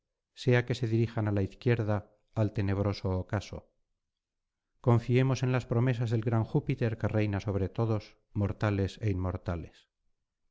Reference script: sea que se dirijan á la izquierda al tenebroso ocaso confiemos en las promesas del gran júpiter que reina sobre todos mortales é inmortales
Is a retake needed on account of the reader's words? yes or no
no